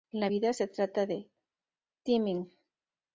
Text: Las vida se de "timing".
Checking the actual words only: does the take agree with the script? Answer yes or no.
no